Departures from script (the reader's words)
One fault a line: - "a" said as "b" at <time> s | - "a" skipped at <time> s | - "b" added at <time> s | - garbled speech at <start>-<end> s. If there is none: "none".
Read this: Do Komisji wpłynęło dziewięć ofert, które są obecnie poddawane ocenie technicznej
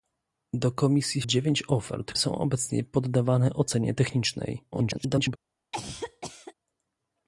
- "wpłynęło" skipped at 1.2 s
- "które" skipped at 2.1 s
- garbled speech at 4.7-5.4 s